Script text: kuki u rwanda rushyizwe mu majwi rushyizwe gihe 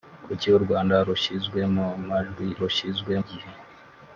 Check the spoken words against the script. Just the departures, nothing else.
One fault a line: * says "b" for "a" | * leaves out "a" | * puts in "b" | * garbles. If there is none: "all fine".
all fine